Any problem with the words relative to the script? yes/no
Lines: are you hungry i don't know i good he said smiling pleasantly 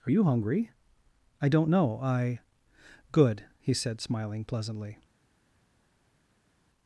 no